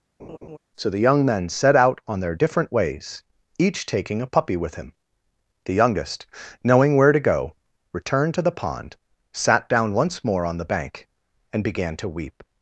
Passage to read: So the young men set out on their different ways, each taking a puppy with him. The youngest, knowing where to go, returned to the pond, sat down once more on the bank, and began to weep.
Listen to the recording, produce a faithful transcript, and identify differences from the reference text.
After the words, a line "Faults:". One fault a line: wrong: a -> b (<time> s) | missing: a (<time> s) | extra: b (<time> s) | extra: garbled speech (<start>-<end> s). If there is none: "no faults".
So the young men set out on their different ways, each taking a puppy with him. The youngest, knowing where to go, returned to the pond, sat down once more on the bank, and began to weep.
Faults:
no faults